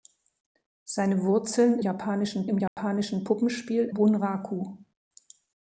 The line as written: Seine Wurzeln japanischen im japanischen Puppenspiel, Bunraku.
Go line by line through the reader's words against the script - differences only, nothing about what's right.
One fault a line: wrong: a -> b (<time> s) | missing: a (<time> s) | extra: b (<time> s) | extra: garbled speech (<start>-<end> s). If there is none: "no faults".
no faults